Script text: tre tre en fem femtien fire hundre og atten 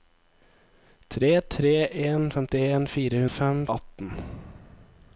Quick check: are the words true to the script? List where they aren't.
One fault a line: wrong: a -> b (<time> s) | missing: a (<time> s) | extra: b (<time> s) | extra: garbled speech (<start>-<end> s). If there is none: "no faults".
missing: fem (2.2 s)
wrong: hundre -> fem (3.3 s)